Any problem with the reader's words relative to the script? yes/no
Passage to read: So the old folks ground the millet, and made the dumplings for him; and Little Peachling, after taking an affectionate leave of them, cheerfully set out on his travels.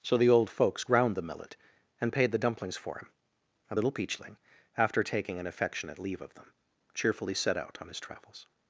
yes